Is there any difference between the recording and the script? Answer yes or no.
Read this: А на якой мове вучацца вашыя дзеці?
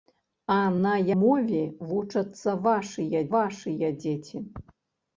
yes